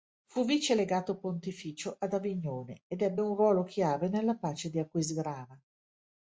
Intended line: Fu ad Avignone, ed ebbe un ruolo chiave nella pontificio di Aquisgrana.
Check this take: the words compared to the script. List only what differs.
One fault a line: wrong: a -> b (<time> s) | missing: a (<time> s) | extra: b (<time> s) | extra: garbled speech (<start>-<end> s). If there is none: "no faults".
extra: vice legato pontificio (0.5 s)
wrong: pontificio -> pace (4.4 s)